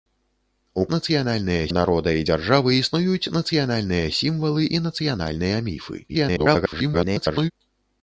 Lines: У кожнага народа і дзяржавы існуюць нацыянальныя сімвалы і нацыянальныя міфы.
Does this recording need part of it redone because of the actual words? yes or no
yes